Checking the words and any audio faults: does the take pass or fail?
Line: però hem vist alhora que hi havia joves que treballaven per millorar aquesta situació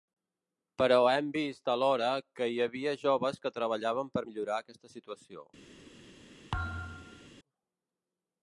fail